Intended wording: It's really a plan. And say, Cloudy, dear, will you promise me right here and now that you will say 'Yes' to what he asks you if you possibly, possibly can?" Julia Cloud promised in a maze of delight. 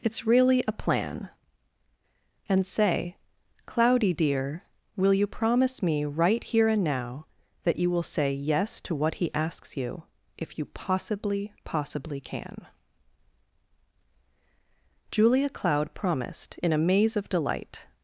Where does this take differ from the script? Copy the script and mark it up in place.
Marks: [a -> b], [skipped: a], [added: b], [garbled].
It's really a plan. And say, Cloudy, dear, will you promise me right here and now that you will say 'Yes' to what he asks you if you possibly, possibly can?" Julia Cloud promised in a maze of delight.